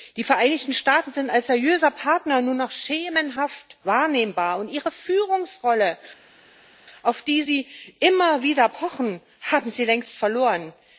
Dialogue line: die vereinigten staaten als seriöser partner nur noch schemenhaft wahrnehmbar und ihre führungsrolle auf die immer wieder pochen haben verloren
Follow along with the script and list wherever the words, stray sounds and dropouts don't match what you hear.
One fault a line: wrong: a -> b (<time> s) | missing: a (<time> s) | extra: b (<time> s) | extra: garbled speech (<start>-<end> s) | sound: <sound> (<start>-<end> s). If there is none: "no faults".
extra: sind (1.1 s)
extra: sie (7.4 s)
extra: sie längst (9.7 s)